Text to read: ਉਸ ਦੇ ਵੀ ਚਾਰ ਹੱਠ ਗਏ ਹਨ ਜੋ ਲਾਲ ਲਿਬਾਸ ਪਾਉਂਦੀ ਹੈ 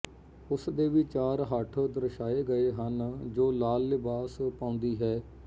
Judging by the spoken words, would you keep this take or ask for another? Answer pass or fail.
fail